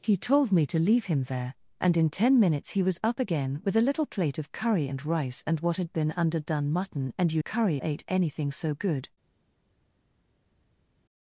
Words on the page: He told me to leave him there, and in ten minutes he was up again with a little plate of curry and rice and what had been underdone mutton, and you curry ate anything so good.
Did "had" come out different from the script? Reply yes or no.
no